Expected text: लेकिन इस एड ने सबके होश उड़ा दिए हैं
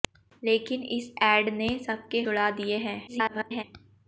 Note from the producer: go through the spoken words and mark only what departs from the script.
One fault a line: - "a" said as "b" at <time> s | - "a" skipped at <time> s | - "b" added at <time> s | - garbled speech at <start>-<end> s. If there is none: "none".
- "होश" skipped at 2.2 s
- garbled speech at 3.1-3.6 s